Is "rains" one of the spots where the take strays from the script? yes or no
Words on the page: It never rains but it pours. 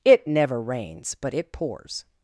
no